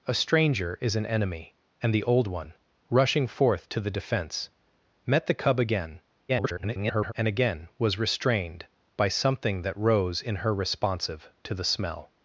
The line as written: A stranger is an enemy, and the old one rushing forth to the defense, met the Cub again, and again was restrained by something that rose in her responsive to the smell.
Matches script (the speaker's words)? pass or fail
fail